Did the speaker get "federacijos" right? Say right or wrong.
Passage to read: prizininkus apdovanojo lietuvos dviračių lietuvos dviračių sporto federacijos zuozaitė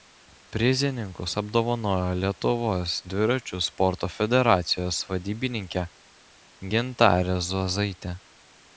wrong